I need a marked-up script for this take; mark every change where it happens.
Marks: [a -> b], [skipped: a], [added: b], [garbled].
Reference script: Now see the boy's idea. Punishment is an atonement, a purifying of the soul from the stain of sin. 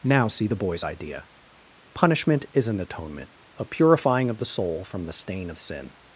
Now see the boy's idea. Punishment is an atonement, a purifying of the soul from the stain of sin.